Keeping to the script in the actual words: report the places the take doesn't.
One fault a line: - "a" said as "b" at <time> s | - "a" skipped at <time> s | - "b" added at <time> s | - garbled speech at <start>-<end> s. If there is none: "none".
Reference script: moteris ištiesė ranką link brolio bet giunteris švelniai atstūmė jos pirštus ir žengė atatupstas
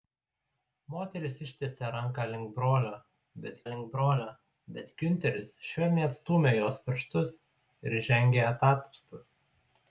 - "link brolio bet" added at 3.7 s